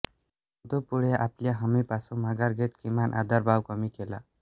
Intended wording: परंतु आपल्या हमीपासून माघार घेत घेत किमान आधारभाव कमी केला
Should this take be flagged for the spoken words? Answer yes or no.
yes